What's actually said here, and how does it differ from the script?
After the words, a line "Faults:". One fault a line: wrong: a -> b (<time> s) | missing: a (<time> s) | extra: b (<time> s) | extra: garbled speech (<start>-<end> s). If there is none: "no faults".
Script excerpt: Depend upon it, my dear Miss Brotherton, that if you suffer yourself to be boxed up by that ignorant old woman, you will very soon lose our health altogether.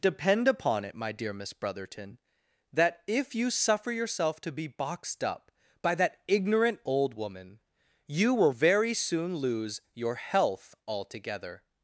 Depend upon it, my dear Miss Brotherton, that if you suffer yourself to be boxed up by that ignorant old woman, you will very soon lose your health altogether.
Faults:
wrong: our -> your (9.9 s)